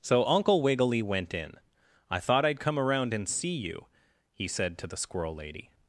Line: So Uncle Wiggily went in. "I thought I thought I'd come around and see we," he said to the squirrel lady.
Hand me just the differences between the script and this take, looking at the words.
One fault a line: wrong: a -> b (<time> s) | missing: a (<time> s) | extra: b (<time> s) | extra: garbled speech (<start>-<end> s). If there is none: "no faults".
missing: I thought (2.4 s)
wrong: we -> you (3.5 s)